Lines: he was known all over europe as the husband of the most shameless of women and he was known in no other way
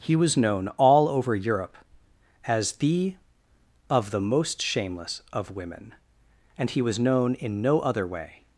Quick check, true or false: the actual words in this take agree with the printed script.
false